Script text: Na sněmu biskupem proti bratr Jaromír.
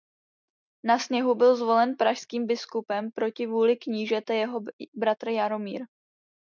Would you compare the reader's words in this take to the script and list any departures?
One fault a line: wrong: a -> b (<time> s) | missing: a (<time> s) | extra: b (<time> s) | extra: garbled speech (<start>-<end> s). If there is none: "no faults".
extra: byl zvolen pražským (1.4 s)
extra: vůli knížete jeho (3.5 s)